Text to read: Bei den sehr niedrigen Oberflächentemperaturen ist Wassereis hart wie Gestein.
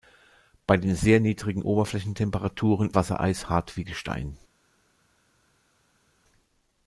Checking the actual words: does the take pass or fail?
fail